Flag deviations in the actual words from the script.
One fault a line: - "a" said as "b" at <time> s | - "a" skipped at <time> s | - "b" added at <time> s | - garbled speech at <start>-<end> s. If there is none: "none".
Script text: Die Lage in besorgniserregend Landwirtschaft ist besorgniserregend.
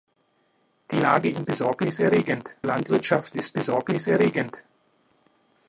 none